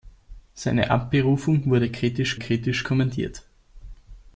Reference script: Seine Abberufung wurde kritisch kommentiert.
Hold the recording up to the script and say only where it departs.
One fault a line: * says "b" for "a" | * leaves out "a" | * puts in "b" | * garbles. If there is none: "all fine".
* puts in "kritisch"